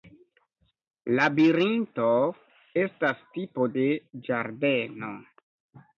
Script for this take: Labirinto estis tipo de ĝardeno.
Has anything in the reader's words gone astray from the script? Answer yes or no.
yes